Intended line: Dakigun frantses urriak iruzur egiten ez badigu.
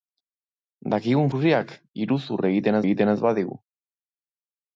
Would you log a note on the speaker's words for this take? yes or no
yes